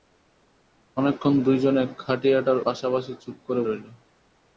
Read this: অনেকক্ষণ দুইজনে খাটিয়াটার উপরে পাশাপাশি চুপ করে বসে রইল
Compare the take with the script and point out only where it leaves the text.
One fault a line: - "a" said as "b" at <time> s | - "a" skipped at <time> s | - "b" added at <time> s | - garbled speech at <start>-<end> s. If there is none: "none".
- "উপরে" skipped at 2.6 s
- "বসে" skipped at 3.6 s